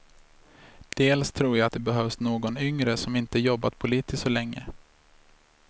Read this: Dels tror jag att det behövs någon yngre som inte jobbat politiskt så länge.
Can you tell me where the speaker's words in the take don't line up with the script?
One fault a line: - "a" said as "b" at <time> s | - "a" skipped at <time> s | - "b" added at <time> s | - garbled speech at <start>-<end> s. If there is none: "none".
none